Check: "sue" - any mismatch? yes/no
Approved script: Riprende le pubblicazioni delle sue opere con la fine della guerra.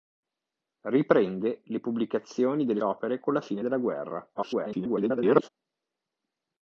yes